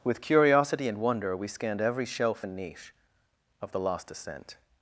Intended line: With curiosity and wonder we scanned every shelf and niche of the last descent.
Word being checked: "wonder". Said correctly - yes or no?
yes